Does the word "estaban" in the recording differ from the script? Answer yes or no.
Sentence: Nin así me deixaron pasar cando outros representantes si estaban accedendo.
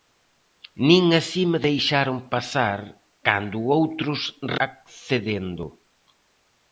yes